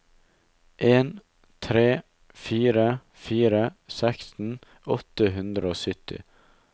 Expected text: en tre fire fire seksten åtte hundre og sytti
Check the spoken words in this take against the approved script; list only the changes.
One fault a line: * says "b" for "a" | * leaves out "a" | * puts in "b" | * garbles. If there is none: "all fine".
all fine